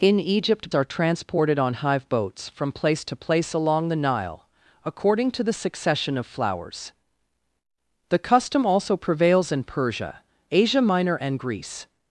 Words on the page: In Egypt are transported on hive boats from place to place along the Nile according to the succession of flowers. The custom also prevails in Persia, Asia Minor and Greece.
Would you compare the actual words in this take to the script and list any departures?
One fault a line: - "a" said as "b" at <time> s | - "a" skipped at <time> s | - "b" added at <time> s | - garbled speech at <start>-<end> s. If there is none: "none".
none